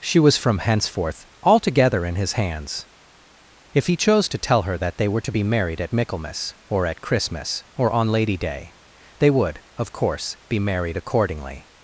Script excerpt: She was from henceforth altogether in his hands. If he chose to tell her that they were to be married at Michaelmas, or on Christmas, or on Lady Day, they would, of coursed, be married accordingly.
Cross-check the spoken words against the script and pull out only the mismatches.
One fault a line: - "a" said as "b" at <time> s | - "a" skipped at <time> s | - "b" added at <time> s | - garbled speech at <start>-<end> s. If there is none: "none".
- "on" said as "at" at 6.9 s
- "coursed" said as "course" at 9.9 s